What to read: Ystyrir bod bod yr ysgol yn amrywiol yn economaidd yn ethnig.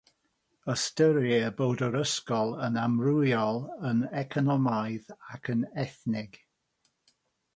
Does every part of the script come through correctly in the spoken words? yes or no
no